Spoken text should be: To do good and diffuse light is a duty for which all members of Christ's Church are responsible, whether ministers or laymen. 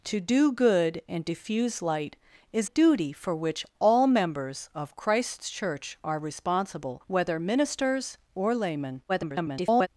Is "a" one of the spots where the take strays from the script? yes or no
yes